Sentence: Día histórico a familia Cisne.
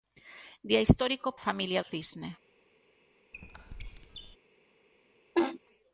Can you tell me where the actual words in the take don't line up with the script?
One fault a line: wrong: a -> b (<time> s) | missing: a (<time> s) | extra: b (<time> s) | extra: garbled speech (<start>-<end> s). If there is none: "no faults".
no faults